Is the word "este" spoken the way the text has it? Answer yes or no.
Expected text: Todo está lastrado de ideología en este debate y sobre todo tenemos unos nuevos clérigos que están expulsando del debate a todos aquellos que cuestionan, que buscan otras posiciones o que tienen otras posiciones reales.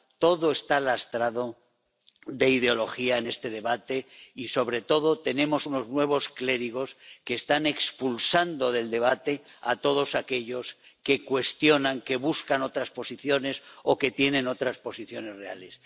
yes